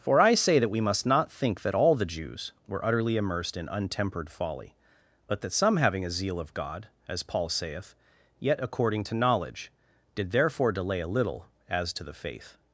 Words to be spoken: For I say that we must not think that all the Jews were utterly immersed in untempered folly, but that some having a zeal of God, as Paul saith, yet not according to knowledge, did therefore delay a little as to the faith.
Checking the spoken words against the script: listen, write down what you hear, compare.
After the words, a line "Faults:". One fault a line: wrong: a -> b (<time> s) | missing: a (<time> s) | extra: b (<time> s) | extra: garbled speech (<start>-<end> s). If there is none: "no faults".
For I say that we must not think that all the Jews were utterly immersed in untempered folly, but that some having a zeal of God, as Paul saith, yet according to knowledge, did therefore delay a little as to the faith.
Faults:
missing: not (8.6 s)